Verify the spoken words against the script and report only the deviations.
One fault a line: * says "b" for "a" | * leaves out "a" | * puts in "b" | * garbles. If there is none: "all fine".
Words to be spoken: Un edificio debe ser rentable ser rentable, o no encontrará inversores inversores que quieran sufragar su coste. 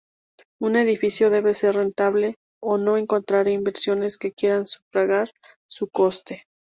* leaves out "ser rentable"
* leaves out "inversores"